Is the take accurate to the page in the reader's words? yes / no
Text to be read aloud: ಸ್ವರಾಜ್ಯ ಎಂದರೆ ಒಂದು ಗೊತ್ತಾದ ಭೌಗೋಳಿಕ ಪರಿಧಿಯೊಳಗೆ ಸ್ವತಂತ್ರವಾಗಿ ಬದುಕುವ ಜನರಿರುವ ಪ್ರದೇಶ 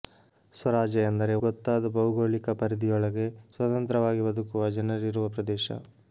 no